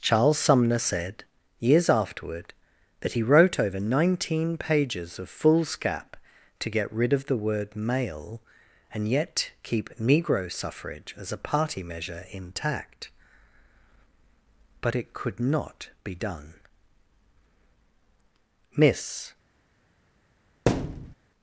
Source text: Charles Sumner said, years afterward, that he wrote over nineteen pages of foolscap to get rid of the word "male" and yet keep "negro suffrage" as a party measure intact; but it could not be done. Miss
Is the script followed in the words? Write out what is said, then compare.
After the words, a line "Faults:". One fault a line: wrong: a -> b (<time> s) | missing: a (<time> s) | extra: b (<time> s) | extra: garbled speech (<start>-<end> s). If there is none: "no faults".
Charles Sumner said, years afterward, that he wrote over nineteen pages of foolscap to get rid of the word "male" and yet keep "negro suffrage" as a party measure intact; but it could not be done. Miss
Faults:
no faults